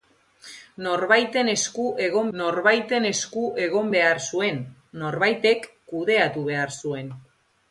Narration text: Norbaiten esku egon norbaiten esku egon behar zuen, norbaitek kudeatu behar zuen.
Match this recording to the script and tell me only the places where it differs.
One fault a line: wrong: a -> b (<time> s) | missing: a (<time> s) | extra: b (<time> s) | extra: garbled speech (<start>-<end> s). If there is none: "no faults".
no faults